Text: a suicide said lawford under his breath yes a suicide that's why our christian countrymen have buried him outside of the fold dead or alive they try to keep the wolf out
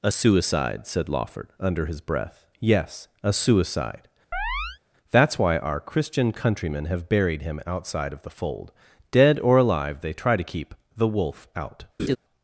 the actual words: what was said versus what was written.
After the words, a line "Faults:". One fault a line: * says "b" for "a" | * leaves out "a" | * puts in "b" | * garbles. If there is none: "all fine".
a suicide said lawford under his breath yes a suicide that's why our christian countrymen have buried him outside of the fold dead or alive they try to keep the wolf out
Faults:
all fine